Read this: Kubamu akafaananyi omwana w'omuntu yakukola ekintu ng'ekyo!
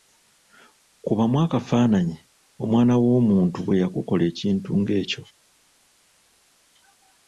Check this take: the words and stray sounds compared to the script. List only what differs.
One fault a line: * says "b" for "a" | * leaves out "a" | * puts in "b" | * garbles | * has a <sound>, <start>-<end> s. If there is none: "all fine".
* puts in "bwe"